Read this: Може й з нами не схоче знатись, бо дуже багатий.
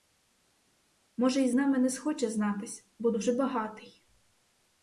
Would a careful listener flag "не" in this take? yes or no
no